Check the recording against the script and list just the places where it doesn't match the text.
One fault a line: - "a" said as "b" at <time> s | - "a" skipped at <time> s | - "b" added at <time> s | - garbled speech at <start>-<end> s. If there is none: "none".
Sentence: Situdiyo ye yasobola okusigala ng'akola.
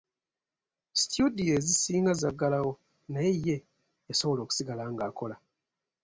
- "ezisinga zaggalawo naye" added at 1.6 s